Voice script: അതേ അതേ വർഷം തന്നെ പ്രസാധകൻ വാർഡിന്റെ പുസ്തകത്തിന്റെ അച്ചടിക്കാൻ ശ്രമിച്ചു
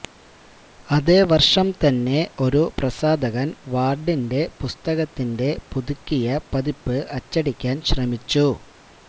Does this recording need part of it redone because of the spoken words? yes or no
yes